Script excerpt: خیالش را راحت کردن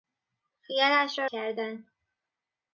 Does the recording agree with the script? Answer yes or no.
no